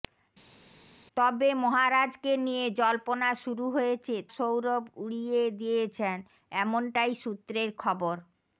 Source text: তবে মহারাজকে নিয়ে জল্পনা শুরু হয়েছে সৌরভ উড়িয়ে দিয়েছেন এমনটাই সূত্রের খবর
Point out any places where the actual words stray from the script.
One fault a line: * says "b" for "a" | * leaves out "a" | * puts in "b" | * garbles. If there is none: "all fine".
all fine